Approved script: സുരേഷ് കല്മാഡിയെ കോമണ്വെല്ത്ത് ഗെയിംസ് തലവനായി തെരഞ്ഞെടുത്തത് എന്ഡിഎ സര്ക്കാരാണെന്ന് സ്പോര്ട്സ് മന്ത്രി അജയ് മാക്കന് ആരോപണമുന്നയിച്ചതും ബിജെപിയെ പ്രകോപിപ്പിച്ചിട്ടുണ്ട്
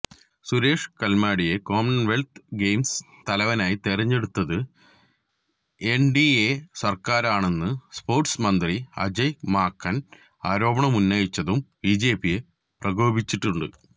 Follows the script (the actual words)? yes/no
yes